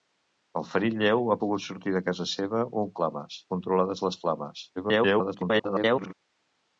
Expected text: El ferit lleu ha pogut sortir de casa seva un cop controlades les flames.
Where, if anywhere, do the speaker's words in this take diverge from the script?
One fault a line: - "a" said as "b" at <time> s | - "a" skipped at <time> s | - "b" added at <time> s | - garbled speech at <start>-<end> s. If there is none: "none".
- "cop" said as "flames" at 3.0 s
- garbled speech at 4.8-6.1 s